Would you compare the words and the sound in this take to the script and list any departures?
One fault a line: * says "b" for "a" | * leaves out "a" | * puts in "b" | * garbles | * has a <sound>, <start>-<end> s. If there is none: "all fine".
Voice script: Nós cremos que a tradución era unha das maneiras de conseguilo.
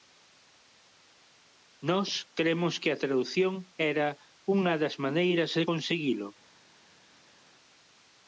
all fine